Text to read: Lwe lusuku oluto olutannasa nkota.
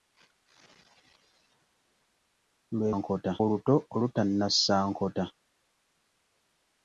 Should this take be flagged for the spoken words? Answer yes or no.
yes